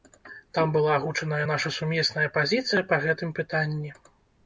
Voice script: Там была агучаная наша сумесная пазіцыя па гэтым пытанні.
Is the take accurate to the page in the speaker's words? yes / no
yes